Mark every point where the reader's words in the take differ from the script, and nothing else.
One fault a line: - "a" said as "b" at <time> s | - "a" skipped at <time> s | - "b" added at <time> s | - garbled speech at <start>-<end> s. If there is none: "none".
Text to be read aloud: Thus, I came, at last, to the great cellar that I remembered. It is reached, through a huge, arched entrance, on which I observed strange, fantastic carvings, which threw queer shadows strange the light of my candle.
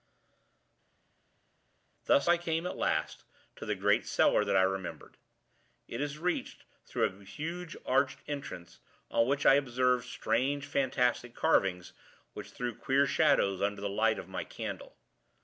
- "strange" said as "under" at 13.6 s